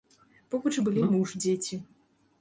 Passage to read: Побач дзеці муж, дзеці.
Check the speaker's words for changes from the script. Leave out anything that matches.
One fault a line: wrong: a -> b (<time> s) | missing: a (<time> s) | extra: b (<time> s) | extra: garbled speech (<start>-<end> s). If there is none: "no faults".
wrong: дзеці -> былі (0.9 s)